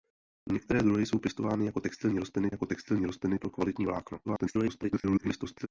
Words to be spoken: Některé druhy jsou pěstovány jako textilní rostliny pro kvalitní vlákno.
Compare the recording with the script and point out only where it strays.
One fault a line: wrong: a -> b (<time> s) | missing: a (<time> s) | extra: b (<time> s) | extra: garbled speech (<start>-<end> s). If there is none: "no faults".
extra: jako textilní rostliny (2.5 s)
extra: garbled speech (4.2-5.7 s)